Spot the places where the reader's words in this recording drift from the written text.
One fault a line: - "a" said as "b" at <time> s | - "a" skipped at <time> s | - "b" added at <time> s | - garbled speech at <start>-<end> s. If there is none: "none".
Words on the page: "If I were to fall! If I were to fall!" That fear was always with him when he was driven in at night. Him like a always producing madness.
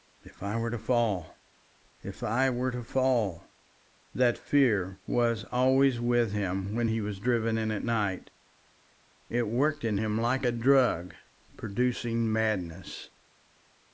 - "It worked in" added at 9.3 s
- "always" said as "drug" at 10.5 s